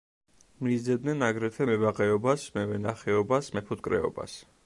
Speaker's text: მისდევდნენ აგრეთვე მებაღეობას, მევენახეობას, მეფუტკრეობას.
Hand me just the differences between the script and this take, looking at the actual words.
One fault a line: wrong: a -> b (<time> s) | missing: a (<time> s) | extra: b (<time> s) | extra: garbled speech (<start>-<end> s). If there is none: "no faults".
no faults